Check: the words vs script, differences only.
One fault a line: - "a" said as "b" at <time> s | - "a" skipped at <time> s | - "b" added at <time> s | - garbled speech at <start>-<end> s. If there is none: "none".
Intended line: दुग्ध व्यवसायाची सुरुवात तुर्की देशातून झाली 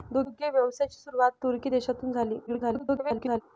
- garbled speech at 2.5-3.4 s